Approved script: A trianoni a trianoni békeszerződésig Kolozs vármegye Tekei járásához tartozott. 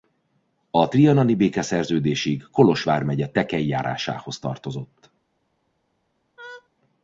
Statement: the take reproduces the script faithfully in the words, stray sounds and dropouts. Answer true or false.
false